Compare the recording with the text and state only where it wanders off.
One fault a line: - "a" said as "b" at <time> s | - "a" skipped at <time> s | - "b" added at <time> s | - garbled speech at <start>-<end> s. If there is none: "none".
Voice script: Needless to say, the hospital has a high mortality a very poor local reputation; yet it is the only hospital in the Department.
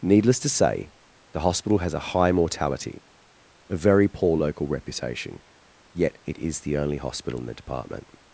none